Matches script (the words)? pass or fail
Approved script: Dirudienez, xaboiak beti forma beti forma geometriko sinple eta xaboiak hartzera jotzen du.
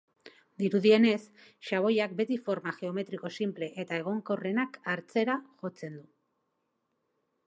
fail